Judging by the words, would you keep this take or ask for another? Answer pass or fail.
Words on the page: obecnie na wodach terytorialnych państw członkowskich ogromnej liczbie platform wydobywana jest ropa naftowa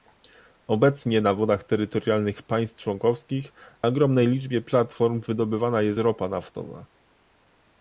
pass